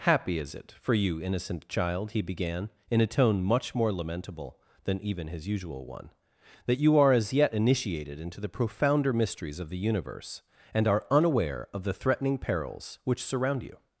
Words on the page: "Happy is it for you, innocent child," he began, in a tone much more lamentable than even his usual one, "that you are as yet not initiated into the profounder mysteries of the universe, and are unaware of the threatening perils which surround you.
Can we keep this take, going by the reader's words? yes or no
no